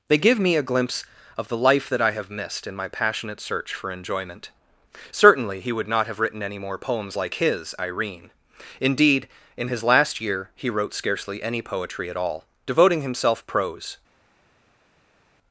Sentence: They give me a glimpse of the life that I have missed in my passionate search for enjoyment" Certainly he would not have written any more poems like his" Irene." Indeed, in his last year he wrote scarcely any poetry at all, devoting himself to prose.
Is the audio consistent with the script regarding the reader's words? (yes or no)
no